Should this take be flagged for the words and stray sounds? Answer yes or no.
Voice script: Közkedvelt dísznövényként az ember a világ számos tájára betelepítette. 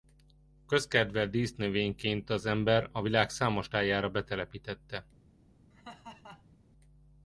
yes